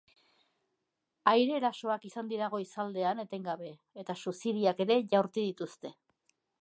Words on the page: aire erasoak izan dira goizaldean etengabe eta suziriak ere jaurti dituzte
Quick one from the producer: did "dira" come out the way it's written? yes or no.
yes